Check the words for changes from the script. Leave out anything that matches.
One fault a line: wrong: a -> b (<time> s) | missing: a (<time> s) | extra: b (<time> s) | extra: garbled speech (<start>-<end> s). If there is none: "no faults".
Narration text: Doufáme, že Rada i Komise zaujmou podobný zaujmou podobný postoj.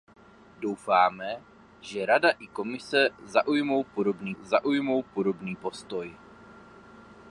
no faults